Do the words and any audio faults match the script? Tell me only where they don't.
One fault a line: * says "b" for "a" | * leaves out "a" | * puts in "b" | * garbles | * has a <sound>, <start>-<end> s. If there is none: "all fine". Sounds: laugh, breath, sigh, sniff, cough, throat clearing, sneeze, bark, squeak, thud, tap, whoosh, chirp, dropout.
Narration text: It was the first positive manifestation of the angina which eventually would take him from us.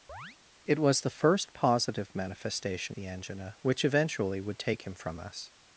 * has a chirp, 0.1-0.4 s
* leaves out "of"